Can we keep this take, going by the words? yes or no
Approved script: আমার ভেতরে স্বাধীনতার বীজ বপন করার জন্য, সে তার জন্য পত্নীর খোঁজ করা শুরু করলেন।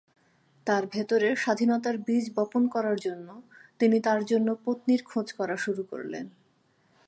no